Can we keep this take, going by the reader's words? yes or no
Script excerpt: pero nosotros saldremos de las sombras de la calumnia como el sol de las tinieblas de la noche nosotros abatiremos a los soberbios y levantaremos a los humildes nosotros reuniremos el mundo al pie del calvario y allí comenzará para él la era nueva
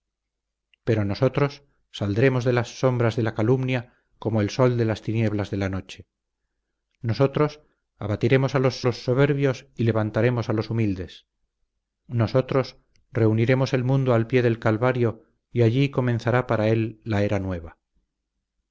no